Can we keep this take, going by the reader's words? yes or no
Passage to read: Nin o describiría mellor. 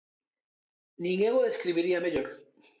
no